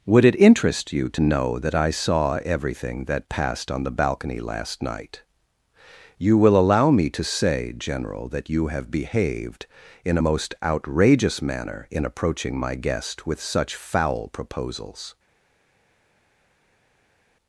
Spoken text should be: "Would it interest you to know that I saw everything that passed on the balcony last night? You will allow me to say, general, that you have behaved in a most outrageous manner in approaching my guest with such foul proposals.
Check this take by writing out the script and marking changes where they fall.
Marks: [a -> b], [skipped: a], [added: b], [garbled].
"Would it interest you to know that I saw everything that passed on the balcony last night? You will allow me to say, general, that you have behaved in a most outrageous manner in approaching my guest with such foul proposals.